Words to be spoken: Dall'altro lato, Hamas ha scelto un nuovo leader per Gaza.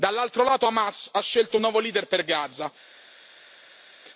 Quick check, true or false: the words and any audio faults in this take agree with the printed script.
true